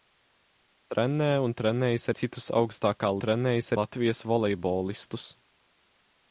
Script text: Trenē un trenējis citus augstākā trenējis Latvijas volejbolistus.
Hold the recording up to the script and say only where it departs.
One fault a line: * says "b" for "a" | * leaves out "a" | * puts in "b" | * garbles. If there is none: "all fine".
all fine